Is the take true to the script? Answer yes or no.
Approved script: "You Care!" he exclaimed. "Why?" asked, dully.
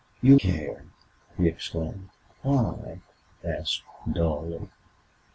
yes